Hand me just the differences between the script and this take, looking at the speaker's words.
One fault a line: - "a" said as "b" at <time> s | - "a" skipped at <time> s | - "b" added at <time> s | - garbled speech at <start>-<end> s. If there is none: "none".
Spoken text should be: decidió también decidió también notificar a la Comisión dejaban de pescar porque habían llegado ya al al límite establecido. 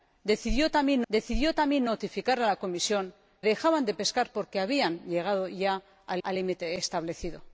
none